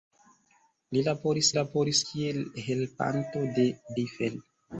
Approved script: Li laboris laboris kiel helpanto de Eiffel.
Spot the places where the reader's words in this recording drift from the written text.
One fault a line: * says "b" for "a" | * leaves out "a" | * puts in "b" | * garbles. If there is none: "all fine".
all fine